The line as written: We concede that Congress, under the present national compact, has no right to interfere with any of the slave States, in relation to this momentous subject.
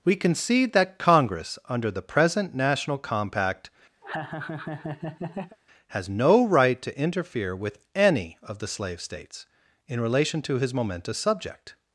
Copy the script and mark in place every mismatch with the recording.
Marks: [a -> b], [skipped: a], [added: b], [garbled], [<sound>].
We concede that Congress, under the present national compact, [laugh] has no right to interfere with any of the slave States, in relation to [this -> his] momentous subject.